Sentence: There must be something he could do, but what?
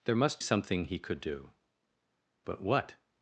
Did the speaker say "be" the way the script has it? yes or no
no